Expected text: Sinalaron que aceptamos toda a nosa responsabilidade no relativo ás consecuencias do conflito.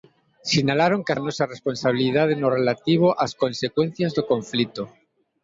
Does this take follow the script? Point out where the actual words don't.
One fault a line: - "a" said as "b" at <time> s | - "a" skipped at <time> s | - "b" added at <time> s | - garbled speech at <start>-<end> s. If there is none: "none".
- "aceptamos toda" skipped at 1.1 s